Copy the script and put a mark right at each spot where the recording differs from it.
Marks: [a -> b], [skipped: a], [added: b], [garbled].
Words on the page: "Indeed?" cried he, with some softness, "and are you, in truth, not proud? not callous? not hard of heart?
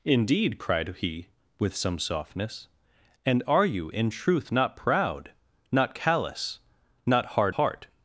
"Indeed?" cried he, with some softness, "and are you, in truth, not proud? not callous? not hard [skipped: of] heart?